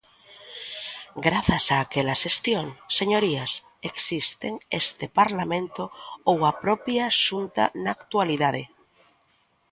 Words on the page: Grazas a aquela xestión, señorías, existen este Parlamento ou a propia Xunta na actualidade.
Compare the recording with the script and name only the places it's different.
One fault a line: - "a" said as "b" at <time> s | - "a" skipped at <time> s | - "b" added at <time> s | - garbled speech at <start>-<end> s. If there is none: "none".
none